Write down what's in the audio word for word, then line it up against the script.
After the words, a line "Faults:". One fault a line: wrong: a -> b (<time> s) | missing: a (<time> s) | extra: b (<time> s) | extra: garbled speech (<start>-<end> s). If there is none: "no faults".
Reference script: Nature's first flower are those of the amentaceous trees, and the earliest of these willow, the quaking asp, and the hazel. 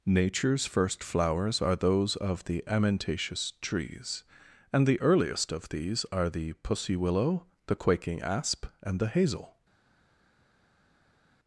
Nature's first flowers are those of the amentaceous trees, and the earliest of these are the pussy willow, the quaking asp, and the hazel.
Faults:
wrong: flower -> flowers (1.0 s)
extra: are the pussy (6.1 s)